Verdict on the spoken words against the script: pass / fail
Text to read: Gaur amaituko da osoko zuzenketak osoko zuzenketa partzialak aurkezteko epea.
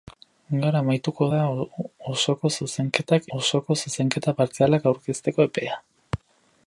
pass